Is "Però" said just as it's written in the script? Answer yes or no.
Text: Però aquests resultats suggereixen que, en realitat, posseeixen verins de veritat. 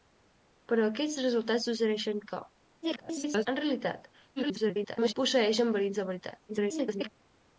yes